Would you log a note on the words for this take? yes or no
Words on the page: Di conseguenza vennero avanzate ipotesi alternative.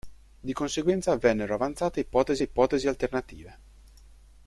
yes